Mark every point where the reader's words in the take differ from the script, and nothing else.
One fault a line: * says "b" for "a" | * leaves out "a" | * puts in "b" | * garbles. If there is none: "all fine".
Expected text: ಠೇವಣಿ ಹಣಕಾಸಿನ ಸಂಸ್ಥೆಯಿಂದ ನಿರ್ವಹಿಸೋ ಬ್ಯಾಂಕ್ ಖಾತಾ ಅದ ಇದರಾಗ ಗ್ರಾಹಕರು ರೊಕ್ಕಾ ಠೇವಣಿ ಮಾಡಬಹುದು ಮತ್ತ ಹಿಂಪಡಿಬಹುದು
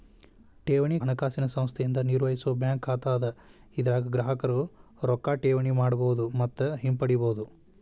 all fine